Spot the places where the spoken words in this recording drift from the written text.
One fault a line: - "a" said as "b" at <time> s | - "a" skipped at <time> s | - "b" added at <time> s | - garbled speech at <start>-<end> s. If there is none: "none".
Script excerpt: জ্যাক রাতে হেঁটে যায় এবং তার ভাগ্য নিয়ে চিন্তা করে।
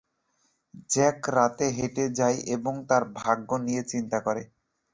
none